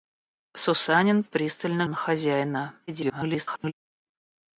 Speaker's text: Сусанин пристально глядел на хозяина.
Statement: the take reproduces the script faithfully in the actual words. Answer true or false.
false